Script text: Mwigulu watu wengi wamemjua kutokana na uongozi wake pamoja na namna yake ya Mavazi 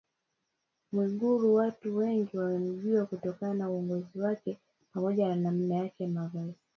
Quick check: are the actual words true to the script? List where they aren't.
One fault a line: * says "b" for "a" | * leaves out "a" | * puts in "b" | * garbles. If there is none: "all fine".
all fine